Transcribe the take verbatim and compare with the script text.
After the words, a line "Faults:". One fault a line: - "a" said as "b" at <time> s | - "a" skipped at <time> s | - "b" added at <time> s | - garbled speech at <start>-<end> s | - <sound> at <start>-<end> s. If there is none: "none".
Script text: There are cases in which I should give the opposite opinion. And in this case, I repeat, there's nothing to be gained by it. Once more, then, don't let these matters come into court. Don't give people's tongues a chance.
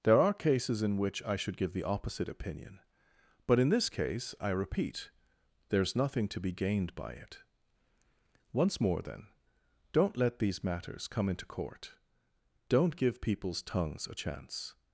There are cases in which I should give the opposite opinion. But in this case, I repeat, there's nothing to be gained by it. Once more, then, don't let these matters come into court. Don't give people's tongues a chance.
Faults:
- "And" said as "But" at 3.5 s